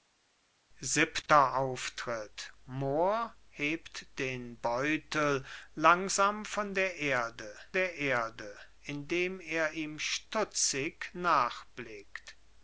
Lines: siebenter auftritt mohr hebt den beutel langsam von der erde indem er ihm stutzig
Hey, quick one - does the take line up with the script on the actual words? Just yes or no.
no